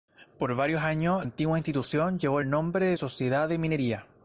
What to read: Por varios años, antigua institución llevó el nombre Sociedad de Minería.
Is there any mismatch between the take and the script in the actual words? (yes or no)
no